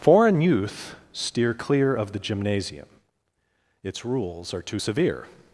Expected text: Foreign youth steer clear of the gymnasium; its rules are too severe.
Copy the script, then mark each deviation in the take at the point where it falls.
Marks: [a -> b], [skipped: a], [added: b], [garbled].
Foreign youth steer clear of the gymnasium; its rules are too severe.